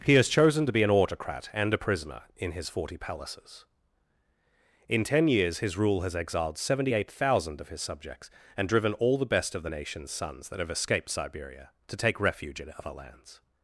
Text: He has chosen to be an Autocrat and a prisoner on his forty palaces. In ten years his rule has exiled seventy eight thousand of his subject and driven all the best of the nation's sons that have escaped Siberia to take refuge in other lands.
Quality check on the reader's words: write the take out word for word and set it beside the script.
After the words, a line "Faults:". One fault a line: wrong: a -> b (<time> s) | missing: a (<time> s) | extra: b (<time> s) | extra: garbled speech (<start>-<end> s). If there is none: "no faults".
He has chosen to be an Autocrat and a prisoner in his forty palaces. In ten years his rule has exiled seventy eight thousand of his subjects and driven all the best of the nation's sons that have escaped Siberia to take refuge in other lands.
Faults:
wrong: on -> in (2.4 s)
wrong: subject -> subjects (7.8 s)